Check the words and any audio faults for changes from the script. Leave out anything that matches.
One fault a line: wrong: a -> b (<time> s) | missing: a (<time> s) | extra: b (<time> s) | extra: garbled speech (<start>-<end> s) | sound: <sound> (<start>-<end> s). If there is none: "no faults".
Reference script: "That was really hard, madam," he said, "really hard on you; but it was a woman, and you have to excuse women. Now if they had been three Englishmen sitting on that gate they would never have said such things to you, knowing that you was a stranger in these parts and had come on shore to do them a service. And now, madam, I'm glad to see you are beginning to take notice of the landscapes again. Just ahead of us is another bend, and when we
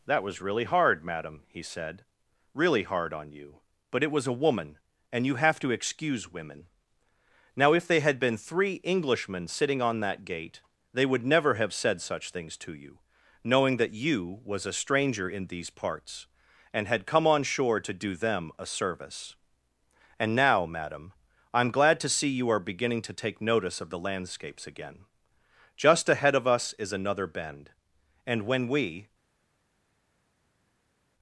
no faults